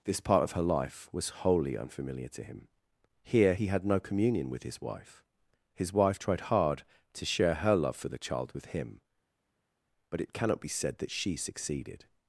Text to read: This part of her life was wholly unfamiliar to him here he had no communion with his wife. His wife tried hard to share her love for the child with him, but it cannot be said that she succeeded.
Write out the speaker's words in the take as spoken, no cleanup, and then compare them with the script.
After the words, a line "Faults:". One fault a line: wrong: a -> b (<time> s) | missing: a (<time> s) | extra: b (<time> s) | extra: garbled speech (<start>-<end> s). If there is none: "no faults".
This part of her life was wholly unfamiliar to him here he had no communion with his wife. His wife tried hard to share her love for the child with him, but it cannot be said that she succeeded.
Faults:
no faults